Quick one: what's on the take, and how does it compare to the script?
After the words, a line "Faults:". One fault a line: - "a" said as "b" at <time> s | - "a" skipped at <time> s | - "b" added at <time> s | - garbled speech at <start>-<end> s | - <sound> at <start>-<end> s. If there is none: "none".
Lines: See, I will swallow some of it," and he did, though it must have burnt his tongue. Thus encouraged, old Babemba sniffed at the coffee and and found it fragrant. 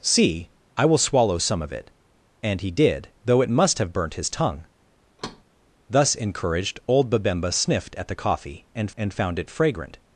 See, I will swallow some of it," and he did, though it must have burnt his tongue. Thus encouraged, old Babemba sniffed at the coffee and and found it fragrant.
Faults:
- thud at 5.2-5.4 s